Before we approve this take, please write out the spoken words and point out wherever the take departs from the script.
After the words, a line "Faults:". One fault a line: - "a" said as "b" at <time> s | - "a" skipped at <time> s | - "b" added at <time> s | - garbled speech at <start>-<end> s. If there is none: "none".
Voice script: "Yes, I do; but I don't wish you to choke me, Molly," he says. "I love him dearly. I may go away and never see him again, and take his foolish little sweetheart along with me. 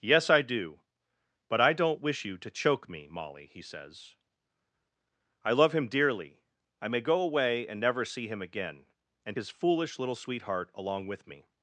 "Yes, I do; but I don't wish you to choke me, Molly," he says. "I love him dearly. I may go away and never see him again, and his foolish little sweetheart along with me.
Faults:
- "take" skipped at 9.4 s